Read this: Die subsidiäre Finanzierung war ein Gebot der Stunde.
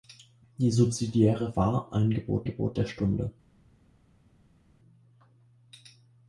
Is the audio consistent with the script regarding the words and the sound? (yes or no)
no